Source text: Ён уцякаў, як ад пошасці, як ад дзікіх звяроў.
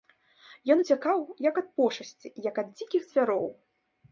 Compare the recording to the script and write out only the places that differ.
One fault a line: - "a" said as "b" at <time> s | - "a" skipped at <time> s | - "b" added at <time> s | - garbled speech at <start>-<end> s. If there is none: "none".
none